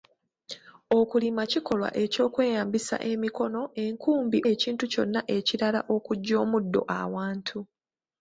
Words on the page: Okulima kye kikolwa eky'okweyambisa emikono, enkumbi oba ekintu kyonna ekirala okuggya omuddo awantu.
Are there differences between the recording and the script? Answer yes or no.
yes